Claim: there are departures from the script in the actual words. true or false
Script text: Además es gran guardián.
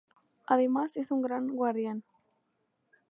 true